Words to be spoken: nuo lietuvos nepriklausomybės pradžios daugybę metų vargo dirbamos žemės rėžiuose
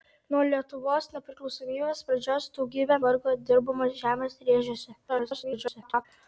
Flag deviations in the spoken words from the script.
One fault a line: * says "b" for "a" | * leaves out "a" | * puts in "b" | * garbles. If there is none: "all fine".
* leaves out "metų"
* garbles